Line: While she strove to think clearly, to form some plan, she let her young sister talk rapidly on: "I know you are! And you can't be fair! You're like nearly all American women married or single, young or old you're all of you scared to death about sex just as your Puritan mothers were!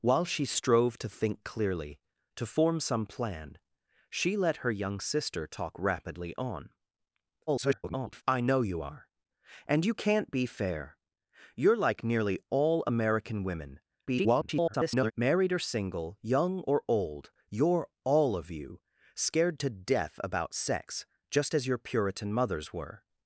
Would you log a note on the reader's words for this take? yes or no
yes